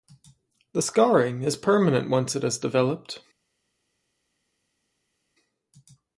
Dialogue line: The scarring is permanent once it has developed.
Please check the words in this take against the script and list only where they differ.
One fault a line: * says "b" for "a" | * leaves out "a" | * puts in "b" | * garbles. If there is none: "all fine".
all fine